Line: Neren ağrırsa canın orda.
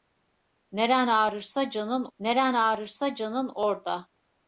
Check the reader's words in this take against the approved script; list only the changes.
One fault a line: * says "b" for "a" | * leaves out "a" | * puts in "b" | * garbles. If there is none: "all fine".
* puts in "neren ağrırsa canın"